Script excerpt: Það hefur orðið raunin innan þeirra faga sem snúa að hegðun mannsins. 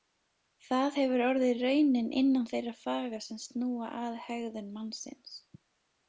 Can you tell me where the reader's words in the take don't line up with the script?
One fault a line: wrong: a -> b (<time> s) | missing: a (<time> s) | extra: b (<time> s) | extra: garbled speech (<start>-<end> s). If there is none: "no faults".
no faults